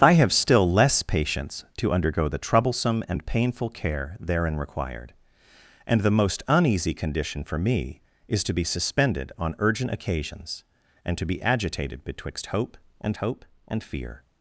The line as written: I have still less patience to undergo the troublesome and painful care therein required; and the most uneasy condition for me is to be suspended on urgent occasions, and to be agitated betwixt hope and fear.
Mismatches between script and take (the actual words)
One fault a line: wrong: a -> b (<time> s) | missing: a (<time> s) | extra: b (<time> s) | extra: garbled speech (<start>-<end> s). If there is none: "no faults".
extra: hope and (13.2 s)